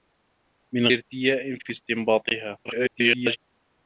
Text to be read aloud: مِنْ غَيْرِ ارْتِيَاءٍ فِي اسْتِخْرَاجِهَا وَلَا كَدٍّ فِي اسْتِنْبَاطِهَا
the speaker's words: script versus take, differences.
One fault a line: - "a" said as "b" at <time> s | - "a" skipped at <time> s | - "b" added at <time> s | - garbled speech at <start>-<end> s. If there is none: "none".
- "غَيْرِ" skipped at 0.9 s
- "اسْتِخْرَاجِهَا وَلَا كَدٍّ" skipped at 1.7 s
- garbled speech at 2.6-3.4 s